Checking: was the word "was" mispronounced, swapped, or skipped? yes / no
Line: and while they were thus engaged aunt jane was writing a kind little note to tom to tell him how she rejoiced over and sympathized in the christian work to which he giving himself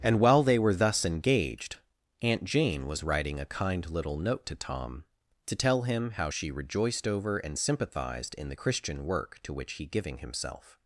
no